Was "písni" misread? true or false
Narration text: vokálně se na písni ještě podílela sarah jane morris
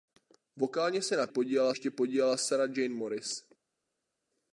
true